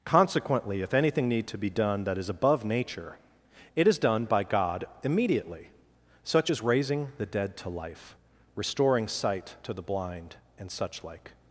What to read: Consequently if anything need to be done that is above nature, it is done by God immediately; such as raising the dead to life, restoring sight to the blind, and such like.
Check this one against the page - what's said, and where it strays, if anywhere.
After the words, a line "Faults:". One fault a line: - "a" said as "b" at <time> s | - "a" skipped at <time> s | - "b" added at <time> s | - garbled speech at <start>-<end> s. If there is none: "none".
Consequently if anything need to be done that is above nature, it is done by God immediately; such as raising the dead to life, restoring sight to the blind, and such like.
Faults:
none